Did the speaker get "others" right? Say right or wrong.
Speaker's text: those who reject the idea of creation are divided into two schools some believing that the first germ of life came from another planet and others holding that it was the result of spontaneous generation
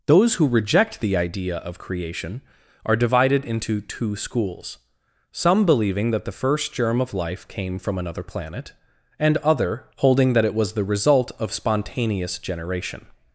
wrong